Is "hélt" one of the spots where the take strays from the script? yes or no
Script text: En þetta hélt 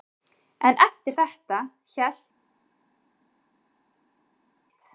no